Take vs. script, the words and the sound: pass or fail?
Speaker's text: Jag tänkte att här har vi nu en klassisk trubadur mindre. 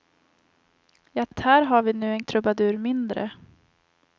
fail